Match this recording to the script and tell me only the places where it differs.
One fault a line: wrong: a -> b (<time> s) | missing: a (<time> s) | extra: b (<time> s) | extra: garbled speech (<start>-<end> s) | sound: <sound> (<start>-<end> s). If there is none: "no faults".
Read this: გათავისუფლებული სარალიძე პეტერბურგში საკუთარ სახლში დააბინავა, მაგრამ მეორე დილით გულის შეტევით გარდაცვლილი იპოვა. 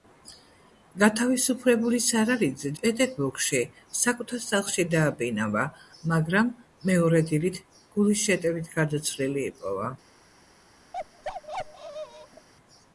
sound: bark (10.9-12.5 s)